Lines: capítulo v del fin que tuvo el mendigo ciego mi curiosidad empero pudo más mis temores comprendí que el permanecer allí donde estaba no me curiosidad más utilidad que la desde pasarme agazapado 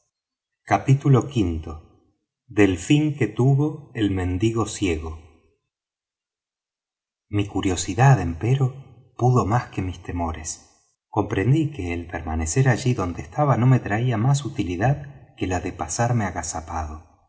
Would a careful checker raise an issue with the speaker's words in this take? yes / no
yes